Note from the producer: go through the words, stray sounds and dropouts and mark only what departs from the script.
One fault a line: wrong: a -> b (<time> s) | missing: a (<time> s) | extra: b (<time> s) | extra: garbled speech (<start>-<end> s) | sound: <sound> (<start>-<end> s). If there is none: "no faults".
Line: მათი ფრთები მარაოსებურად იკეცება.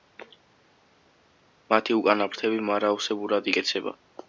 extra: უკანა (2.0 s)